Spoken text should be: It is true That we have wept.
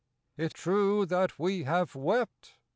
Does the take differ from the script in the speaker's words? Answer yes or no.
yes